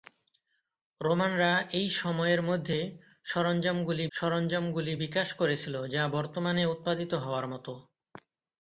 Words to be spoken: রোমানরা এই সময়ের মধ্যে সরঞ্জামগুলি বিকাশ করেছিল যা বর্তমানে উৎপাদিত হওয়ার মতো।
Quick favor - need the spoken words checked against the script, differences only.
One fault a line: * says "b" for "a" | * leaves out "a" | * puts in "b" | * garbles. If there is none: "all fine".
* puts in "সরঞ্জামগুলি"